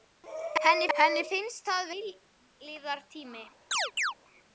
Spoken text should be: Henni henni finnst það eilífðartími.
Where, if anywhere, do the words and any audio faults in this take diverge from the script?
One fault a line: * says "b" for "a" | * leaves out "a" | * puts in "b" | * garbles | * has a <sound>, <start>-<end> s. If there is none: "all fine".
* has a chirp, 3.7-4.1 s